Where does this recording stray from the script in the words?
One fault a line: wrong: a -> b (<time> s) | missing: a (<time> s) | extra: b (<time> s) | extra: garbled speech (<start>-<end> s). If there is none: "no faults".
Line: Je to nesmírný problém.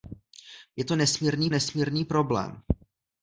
extra: nesmírný (1.5 s)